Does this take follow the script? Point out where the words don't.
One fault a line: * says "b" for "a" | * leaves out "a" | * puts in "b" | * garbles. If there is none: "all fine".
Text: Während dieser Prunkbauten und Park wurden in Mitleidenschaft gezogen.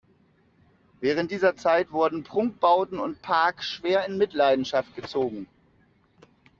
* puts in "Zeit wurden"
* says "schwer" for "wurden"